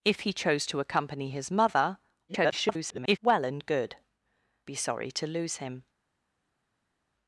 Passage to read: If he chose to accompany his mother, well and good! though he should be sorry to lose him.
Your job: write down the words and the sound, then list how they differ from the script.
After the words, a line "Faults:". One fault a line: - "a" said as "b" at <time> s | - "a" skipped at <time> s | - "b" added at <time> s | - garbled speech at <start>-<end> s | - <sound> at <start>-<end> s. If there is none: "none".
If he chose to accompany his mother, [garbled] well and good! be sorry to lose him.
Faults:
- garbled speech at 2.3-3.2 s
- "though he should" skipped at 4.0 s